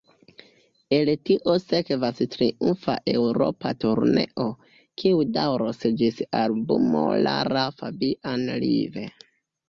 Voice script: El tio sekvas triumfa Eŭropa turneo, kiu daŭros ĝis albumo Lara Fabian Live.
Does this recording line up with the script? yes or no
yes